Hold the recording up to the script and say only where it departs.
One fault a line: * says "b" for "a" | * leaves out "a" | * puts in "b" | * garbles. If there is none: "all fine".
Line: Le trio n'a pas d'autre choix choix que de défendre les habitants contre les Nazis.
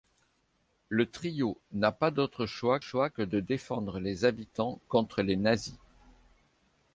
all fine